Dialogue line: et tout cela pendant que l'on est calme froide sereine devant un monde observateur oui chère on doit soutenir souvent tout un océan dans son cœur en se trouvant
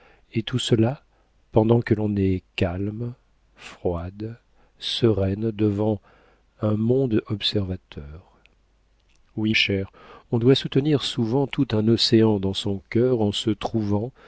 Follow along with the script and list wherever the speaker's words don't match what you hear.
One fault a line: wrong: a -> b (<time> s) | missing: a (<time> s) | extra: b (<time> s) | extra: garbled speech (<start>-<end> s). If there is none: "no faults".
no faults